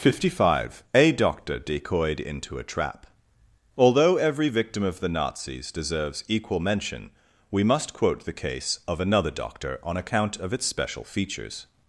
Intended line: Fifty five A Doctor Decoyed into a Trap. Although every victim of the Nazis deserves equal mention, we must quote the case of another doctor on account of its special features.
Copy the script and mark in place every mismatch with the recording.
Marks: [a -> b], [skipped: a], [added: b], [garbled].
Fifty five A Doctor Decoyed into a Trap. Although every victim of the Nazis deserves equal mention, we must quote the case of another doctor on account of its special features.